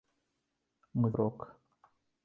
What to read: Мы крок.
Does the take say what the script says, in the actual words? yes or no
yes